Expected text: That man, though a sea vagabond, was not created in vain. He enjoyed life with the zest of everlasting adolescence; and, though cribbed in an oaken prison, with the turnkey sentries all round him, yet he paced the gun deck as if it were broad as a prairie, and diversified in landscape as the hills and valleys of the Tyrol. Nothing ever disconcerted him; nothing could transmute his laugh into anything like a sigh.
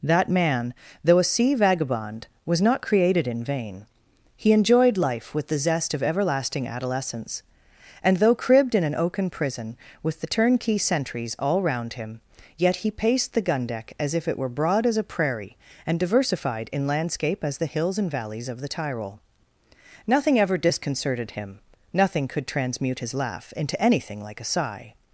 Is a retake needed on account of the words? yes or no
no